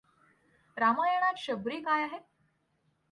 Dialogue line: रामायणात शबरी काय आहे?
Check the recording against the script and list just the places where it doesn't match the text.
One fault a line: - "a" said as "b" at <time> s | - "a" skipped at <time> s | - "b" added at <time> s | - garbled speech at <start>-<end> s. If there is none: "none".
none